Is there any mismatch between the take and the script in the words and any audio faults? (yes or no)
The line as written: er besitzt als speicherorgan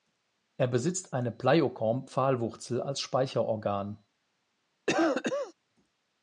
yes